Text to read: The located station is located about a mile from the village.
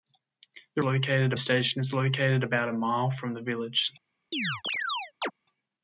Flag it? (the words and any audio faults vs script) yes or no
yes